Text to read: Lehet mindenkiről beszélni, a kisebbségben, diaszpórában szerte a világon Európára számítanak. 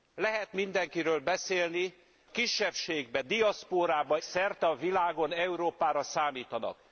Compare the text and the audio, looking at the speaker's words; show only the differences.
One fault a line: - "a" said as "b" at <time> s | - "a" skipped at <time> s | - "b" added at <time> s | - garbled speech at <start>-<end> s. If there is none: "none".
none